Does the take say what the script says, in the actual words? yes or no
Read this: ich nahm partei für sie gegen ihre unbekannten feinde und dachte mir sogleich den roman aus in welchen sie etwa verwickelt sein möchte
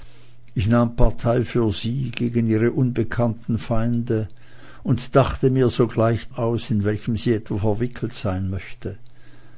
no